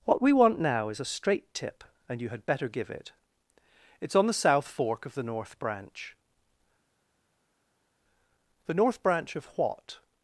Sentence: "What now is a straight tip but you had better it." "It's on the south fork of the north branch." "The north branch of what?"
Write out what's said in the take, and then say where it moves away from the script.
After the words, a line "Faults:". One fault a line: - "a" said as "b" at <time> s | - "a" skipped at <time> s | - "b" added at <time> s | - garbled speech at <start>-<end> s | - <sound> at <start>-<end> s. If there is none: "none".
"What we want now is a straight tip and you had better give it." "It's on the south fork of the north branch." "The north branch of what?"
Faults:
- "we want" added at 0.2 s
- "but" said as "and" at 2.1 s
- "give" added at 2.7 s